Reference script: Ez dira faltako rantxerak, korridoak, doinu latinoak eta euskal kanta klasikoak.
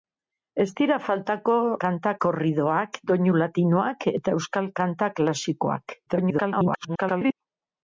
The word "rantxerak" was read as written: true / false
false